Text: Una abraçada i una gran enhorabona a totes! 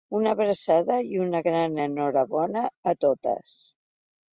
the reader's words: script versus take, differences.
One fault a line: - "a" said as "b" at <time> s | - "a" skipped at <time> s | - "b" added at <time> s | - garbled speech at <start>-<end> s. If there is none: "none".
none